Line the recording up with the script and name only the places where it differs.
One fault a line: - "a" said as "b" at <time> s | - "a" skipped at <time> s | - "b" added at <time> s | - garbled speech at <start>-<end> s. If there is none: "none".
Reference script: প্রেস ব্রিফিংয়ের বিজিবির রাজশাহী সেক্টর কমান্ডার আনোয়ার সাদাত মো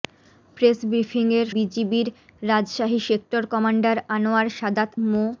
none